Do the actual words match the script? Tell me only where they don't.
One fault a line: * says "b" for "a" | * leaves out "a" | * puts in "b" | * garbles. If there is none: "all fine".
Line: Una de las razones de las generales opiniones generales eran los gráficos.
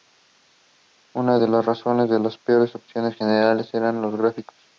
* says "peores" for "generales"